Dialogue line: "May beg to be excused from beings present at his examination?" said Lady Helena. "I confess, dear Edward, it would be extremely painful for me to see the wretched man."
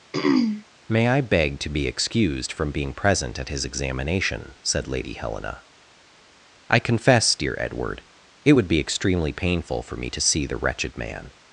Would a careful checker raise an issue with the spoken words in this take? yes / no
yes